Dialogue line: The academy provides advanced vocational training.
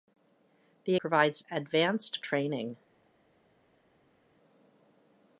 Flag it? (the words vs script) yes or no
yes